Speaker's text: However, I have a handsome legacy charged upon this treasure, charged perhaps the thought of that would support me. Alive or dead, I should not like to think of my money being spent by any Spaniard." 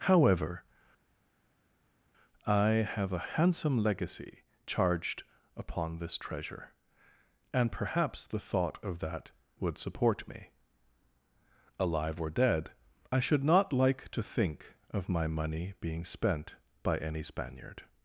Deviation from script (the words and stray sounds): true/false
true